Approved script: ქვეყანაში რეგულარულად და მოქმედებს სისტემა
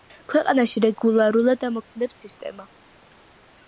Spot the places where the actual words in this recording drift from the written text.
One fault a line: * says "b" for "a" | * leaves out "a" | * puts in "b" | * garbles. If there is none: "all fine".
all fine